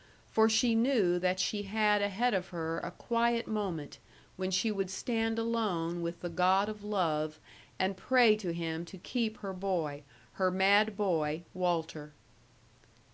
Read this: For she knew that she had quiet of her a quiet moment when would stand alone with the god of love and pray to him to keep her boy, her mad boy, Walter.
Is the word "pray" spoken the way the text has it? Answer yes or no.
yes